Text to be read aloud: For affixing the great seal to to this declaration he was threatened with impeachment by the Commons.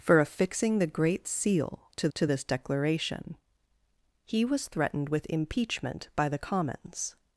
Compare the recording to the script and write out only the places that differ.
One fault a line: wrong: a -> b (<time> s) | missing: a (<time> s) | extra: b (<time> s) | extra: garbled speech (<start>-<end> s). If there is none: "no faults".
no faults